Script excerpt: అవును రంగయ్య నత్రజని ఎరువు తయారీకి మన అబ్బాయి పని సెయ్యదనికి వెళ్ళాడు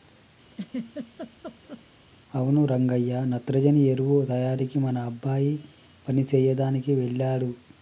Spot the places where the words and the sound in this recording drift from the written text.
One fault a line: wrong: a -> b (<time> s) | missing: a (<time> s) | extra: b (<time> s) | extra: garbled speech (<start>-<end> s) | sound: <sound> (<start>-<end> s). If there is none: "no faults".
sound: laugh (0.5-1.9 s)